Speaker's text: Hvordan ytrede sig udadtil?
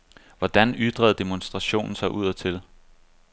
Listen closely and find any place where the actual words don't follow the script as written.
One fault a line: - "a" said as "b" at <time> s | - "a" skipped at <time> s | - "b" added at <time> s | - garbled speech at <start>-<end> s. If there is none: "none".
- "demonstrationen" added at 1.1 s